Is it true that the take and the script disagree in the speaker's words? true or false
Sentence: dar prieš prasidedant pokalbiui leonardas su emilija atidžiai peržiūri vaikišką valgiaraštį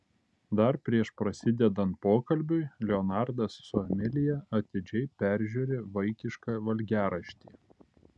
false